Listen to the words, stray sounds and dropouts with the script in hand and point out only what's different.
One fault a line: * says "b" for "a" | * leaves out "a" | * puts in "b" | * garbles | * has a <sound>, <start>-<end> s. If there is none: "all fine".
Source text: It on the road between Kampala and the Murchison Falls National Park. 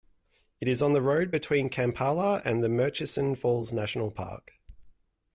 * puts in "is"